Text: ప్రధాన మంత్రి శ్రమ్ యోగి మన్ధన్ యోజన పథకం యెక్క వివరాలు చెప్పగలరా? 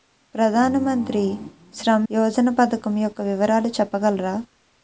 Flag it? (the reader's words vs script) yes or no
yes